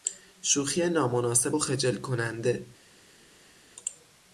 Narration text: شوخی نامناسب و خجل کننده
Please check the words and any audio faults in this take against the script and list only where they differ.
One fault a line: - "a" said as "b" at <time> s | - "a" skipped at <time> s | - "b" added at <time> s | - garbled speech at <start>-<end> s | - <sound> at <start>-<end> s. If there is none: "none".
none